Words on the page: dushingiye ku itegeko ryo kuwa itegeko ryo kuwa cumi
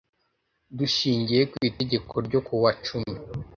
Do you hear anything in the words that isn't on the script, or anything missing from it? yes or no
yes